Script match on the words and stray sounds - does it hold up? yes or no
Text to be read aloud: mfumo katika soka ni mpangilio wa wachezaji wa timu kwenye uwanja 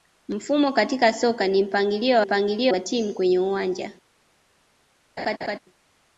no